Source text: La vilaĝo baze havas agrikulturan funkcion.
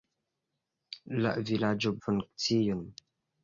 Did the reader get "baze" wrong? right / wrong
wrong